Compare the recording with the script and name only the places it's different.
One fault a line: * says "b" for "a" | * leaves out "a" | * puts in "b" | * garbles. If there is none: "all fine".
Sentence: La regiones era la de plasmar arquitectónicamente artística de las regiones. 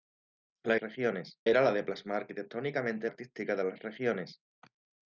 all fine